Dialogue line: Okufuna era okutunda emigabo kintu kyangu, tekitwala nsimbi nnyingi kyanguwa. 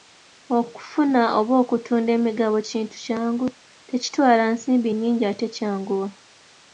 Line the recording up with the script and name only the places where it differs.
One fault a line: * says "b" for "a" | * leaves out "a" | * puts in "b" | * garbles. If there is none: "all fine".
* says "oba" for "era"
* puts in "ate"